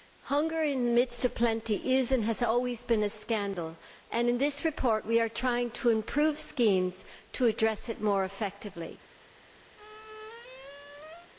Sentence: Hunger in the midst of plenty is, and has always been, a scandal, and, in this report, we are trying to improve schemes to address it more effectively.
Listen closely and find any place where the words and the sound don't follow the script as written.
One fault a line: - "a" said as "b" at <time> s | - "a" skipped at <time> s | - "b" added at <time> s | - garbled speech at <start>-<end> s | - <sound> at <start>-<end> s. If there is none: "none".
- squeak at 9.8-11.3 s